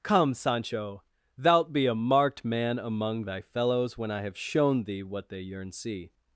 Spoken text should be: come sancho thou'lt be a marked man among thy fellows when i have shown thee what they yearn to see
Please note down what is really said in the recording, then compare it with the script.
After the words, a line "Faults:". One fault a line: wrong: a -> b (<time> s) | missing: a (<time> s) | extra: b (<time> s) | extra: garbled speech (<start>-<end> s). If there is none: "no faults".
come sancho thou'lt be a marked man among thy fellows when i have shown thee what they yearn see
Faults:
missing: to (5.7 s)